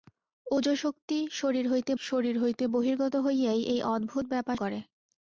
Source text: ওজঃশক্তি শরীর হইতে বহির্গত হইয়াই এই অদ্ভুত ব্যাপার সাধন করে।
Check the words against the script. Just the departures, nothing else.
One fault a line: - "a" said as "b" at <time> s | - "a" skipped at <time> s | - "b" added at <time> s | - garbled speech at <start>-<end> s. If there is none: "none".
- "শরীর হইতে" added at 2.0 s
- "সাধন" skipped at 4.6 s